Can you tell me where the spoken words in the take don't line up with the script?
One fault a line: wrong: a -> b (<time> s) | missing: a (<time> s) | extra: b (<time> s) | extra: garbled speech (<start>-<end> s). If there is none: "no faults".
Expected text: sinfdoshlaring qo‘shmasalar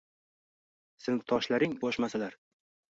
no faults